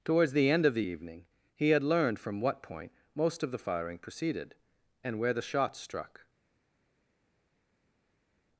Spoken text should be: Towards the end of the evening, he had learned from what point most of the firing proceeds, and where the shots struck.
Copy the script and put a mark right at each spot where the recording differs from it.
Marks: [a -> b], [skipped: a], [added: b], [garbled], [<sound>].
Towards the end of the evening, he had learned from what point most of the firing [proceeds, -> proceeded] and where the shots struck.